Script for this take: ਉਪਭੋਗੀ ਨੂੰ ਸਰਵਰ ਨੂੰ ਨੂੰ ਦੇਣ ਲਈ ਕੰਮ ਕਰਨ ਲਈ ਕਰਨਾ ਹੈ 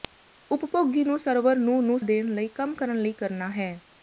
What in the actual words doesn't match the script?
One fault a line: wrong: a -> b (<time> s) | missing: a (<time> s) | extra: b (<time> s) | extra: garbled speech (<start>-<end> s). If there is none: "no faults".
no faults